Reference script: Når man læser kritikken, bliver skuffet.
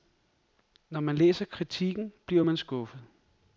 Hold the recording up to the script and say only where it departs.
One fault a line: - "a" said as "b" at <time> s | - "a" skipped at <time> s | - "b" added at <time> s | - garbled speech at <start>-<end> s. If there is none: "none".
- "man" added at 2.4 s